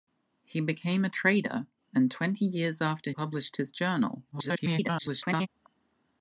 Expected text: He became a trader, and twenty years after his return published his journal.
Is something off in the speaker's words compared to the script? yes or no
yes